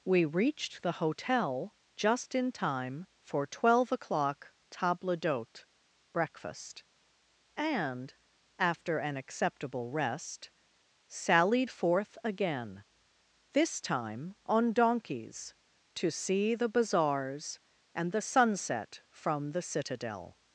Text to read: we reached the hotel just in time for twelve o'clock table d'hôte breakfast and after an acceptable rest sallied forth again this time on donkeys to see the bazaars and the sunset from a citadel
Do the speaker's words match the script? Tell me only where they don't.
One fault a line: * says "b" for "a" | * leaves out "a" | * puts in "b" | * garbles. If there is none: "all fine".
* says "the" for "a"